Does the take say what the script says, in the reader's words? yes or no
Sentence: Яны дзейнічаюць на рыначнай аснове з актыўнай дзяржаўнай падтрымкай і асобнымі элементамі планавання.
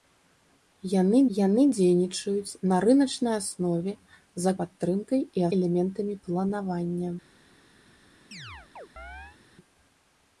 no